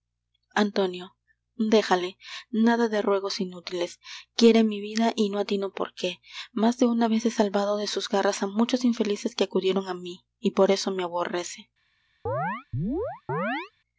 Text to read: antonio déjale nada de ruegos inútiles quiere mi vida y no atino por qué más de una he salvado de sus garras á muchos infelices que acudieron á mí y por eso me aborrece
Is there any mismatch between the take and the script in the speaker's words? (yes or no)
yes